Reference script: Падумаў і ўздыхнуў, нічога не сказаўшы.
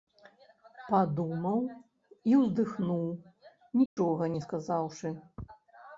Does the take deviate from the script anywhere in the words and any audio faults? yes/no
yes